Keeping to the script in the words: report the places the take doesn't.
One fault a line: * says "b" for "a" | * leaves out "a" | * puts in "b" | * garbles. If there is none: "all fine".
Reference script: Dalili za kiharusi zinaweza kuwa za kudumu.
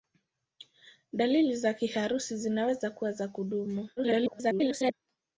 * garbles